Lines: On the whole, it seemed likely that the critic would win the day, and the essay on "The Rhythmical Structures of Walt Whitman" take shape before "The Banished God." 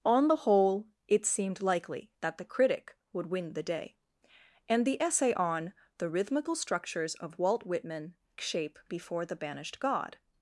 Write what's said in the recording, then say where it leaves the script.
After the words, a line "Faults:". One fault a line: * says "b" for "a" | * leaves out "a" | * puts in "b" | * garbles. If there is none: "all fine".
On the whole, it seemed likely that the critic would win the day, and the essay on "The Rhythmical Structures of Walt Whitman" shape before "The Banished God."
Faults:
* leaves out "take"